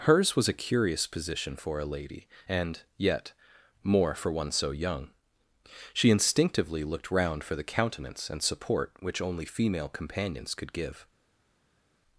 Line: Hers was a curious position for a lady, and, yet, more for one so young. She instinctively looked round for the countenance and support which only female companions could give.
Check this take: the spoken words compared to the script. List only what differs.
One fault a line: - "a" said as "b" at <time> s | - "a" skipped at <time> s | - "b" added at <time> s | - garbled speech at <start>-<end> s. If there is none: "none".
none